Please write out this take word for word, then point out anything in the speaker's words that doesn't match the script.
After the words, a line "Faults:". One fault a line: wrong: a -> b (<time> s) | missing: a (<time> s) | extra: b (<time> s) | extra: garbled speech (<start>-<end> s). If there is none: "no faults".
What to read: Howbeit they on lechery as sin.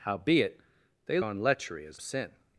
Howbeit they on lechery as sin.
Faults:
no faults